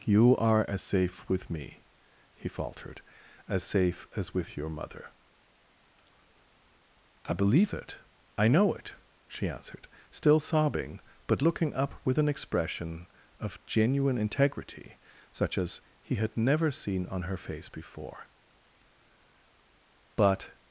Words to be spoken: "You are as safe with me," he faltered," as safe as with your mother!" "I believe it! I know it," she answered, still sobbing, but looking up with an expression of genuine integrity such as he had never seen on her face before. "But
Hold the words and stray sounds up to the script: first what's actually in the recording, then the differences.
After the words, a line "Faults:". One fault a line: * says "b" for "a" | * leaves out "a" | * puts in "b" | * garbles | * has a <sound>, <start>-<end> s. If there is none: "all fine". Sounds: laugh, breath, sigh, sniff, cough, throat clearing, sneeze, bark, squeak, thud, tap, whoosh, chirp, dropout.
"You are as safe with me," he faltered," as safe as with your mother!" "I believe it! I know it," she answered, still sobbing, but looking up with an expression of genuine integrity such as he had never seen on her face before. "But
Faults:
all fine